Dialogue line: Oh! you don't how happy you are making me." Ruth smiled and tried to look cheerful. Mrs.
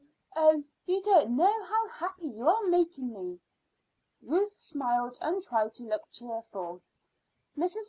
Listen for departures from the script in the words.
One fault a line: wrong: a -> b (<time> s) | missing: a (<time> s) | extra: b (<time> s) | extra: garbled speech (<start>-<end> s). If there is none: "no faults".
extra: know (1.4 s)